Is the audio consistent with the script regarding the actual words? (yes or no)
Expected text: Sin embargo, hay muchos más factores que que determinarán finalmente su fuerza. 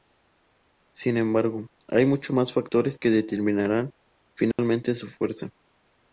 no